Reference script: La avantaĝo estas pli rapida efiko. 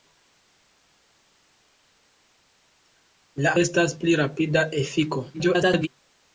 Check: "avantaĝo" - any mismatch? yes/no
yes